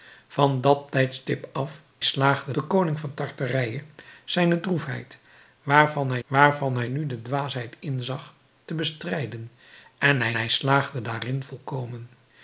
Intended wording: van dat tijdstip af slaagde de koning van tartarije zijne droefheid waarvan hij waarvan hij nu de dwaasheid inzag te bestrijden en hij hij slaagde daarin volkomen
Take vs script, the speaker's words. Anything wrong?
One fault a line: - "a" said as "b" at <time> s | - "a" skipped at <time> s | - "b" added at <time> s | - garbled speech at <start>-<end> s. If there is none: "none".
none